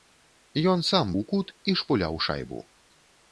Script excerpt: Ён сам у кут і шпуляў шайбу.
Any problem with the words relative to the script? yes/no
no